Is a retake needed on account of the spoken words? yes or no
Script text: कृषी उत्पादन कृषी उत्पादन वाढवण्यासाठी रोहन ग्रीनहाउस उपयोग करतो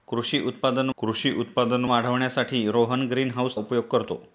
no